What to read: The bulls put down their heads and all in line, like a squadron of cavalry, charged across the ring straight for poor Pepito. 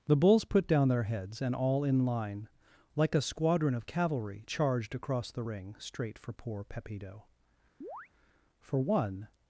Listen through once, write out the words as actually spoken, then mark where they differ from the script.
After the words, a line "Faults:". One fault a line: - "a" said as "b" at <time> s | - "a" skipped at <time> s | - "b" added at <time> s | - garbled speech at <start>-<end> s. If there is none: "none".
The bulls put down their heads and all in line, like a squadron of cavalry, charged across the ring straight for poor Pepito. For one
Faults:
- "For one" added at 8.6 s